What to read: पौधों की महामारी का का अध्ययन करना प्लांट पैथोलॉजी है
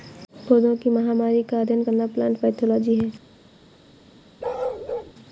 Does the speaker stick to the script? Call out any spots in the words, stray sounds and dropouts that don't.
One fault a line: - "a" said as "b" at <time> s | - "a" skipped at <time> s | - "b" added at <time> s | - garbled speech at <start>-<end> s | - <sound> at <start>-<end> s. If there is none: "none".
- "का" skipped at 1.6 s
- bark at 4.4-5.1 s